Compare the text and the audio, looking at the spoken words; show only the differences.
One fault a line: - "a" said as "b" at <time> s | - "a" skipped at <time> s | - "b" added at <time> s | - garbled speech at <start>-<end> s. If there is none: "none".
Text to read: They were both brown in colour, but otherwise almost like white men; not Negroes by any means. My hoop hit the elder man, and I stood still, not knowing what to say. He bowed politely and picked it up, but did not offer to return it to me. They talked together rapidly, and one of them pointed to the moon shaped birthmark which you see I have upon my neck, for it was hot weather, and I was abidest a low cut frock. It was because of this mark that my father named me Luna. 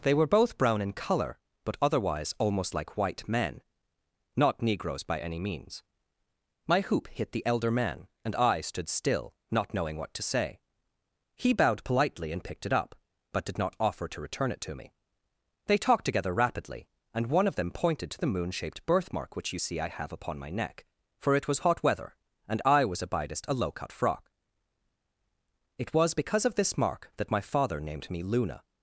none